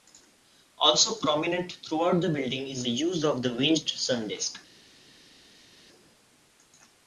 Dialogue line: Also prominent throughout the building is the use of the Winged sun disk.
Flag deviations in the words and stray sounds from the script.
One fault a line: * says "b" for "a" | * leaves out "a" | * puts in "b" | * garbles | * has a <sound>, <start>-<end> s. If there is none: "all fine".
all fine